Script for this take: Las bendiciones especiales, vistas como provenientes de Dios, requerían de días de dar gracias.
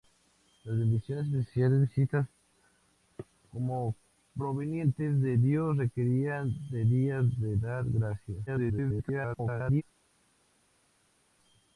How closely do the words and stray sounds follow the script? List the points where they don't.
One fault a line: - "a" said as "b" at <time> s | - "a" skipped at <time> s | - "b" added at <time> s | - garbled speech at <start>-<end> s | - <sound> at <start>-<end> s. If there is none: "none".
- garbled speech at 8.5-9.8 s